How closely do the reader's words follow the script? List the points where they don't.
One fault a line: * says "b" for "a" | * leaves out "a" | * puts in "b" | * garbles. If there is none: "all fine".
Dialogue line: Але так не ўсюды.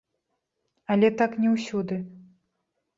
all fine